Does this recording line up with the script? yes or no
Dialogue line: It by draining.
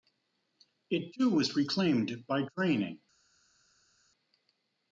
no